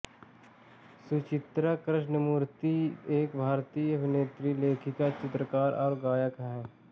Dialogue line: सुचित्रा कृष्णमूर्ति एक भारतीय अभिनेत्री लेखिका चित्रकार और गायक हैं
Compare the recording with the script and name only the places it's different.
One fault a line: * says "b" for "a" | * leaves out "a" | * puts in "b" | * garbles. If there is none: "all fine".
all fine